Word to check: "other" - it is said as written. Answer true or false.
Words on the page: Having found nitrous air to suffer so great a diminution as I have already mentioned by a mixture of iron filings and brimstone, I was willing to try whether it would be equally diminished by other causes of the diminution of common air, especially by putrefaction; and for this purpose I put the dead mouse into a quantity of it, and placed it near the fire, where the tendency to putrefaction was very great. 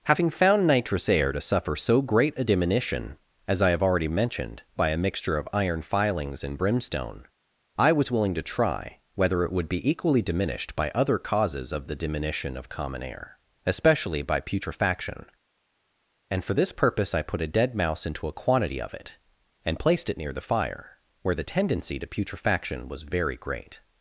true